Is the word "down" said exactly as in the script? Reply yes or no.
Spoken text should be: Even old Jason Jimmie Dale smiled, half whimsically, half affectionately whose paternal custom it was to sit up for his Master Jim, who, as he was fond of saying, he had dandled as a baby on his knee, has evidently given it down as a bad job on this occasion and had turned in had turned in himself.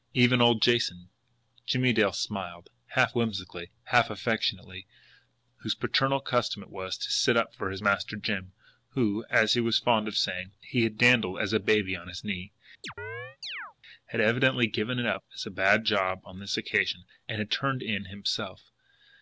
no